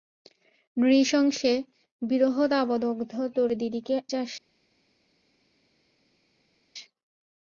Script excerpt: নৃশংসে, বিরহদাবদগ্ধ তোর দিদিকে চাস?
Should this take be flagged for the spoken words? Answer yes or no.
no